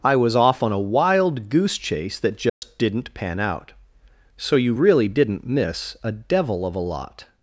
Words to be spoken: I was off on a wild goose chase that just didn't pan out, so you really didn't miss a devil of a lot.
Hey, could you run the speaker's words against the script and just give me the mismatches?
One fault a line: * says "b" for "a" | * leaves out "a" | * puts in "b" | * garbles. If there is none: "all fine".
all fine